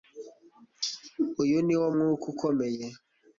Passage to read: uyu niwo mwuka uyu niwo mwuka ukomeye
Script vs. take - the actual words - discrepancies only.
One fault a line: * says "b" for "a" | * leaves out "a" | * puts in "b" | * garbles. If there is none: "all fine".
* leaves out "uyu niwo mwuka"